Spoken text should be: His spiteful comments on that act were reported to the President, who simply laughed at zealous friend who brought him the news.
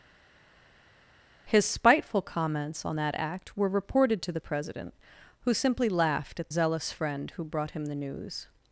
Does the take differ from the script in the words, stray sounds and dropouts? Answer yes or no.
no